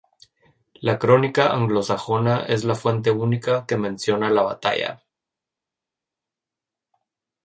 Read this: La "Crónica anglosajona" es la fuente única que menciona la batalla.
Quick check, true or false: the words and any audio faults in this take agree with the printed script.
true